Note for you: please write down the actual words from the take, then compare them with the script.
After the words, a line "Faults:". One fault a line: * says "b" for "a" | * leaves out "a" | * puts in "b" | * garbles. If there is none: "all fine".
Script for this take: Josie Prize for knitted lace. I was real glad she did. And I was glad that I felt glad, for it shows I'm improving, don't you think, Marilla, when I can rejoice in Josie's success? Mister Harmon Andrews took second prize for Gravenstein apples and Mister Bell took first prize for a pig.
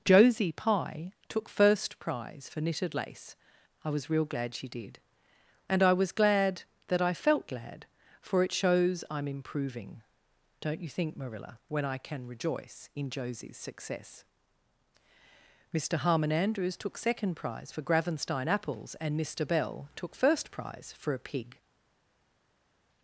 Josie Pye took first prize for knitted lace. I was real glad she did. And I was glad that I felt glad, for it shows I'm improving, don't you think, Marilla, when I can rejoice in Josie's success? Mister Harmon Andrews took second prize for Gravenstein apples and Mister Bell took first prize for a pig.
Faults:
* puts in "Pye took first"